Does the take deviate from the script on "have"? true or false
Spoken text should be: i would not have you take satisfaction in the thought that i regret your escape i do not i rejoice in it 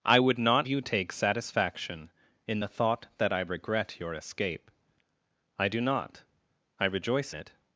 true